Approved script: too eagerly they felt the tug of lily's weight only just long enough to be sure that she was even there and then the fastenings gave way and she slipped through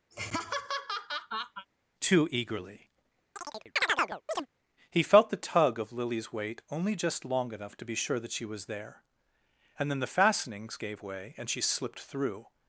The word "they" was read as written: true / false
false